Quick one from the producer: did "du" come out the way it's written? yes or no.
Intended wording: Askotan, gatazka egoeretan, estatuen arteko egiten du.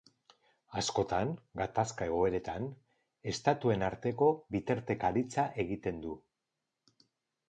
yes